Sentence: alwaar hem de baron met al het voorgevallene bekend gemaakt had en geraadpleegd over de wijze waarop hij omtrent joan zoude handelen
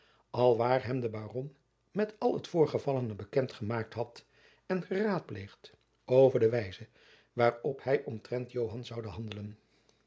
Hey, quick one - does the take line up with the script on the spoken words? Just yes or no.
yes